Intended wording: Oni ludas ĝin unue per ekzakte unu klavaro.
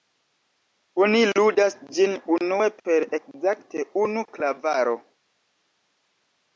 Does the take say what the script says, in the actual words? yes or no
yes